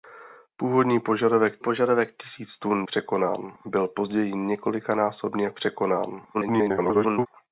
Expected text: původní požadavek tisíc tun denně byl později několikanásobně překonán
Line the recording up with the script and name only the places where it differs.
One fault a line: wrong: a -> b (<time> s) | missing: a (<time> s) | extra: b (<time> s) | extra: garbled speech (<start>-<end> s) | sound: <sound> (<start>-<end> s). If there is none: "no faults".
extra: požadavek (1.6 s)
wrong: denně -> překonán (2.8 s)
extra: garbled speech (6.3-7.3 s)